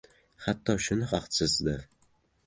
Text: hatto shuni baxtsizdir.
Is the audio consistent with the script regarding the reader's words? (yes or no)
yes